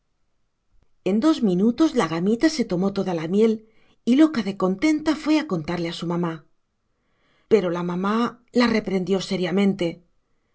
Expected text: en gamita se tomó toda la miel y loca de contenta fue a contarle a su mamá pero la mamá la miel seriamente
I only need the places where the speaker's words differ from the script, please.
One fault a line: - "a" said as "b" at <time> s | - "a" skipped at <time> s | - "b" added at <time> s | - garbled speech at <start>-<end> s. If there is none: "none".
- "dos minutos la" added at 1.2 s
- "miel" said as "reprendió" at 8.7 s